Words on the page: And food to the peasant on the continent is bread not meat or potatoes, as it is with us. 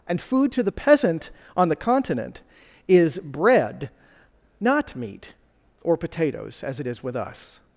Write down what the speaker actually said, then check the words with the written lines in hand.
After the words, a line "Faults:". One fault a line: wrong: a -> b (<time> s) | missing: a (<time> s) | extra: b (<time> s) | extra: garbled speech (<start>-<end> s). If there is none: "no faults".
And food to the peasant on the continent is bread not meat or potatoes, as it is with us.
Faults:
no faults